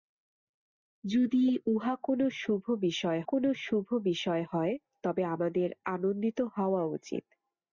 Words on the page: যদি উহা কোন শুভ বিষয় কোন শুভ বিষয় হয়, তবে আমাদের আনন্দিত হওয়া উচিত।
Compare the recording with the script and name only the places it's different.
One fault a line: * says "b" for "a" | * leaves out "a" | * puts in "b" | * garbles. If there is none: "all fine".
all fine